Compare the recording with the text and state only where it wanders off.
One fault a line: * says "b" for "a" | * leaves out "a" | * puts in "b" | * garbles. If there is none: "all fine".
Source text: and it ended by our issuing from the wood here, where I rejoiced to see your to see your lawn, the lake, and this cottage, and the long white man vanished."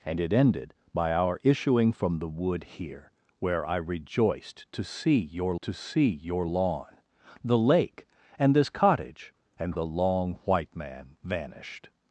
all fine